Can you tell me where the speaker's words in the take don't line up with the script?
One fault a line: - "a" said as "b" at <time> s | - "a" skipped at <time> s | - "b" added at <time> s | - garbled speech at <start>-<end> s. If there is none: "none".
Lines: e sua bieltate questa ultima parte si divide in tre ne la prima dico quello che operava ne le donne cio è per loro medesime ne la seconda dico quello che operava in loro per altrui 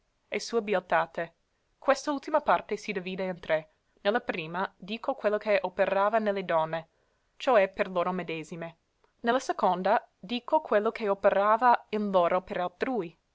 none